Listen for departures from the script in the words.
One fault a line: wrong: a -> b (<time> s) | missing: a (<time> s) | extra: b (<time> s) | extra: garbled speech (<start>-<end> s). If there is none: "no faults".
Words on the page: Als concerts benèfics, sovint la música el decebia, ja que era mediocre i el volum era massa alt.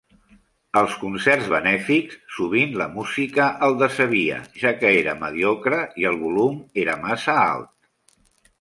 no faults